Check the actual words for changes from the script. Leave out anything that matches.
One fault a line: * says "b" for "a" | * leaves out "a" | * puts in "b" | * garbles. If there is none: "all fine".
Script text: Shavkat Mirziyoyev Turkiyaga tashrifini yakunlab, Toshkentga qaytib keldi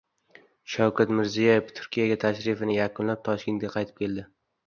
all fine